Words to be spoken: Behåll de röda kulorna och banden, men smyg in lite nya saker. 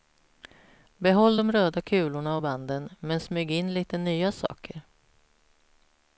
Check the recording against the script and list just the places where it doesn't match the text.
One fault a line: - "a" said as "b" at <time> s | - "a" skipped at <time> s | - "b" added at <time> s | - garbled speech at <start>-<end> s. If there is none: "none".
none